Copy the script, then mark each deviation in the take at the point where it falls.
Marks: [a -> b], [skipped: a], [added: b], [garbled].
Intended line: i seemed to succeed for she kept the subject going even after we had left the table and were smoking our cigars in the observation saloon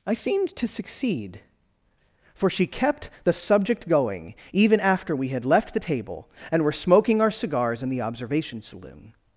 i seemed to succeed for she kept the subject going even after we had left the table and were smoking our cigars in the observation saloon